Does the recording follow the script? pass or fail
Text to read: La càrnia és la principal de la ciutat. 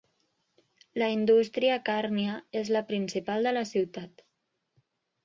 fail